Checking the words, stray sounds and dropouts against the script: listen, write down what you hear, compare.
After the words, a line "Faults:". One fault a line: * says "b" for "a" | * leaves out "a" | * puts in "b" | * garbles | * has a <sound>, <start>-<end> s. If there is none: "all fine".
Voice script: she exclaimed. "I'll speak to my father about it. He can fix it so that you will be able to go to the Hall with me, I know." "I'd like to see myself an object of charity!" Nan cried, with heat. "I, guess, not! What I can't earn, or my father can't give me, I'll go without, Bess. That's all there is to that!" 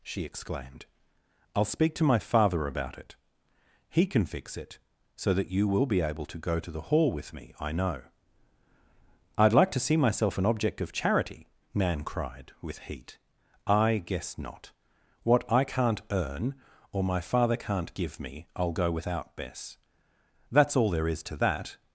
she exclaimed. "I'll speak to my father about it. He can fix it so that you will be able to go to the Hall with me, I know." "I'd like to see myself an object of charity!" Nan cried, with heat. "I, guess, not! What I can't earn, or my father can't give me, I'll go without, Bess. That's all there is to that!"
Faults:
all fine